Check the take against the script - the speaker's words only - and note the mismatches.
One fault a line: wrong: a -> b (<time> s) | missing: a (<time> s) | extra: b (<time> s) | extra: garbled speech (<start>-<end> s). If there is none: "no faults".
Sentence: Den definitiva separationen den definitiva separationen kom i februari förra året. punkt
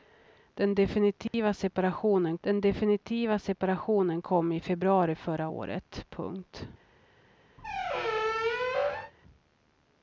no faults